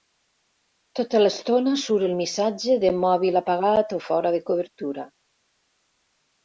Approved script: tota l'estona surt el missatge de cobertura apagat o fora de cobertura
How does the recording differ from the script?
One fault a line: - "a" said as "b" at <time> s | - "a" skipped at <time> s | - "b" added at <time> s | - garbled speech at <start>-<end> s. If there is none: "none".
- "cobertura" said as "mòbil" at 3.1 s